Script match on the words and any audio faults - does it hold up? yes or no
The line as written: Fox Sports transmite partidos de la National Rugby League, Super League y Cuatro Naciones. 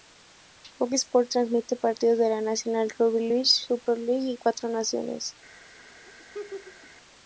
no